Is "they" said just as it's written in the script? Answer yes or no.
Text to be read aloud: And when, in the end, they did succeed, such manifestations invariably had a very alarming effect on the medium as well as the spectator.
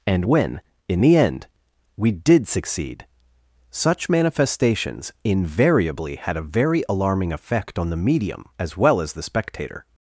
no